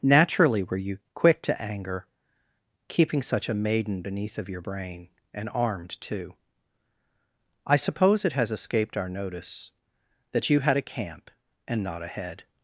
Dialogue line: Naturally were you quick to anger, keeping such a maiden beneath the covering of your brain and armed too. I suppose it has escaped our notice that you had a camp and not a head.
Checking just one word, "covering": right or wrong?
wrong